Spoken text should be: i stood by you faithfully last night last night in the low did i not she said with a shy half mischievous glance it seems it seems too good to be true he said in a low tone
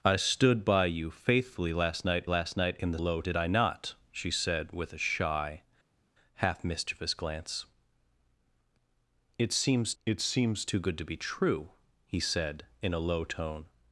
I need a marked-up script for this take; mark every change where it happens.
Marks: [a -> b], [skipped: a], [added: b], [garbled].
i stood by you faithfully last night last night in the low did i not she said with a shy half mischievous glance it seems it seems too good to be true he said in a low tone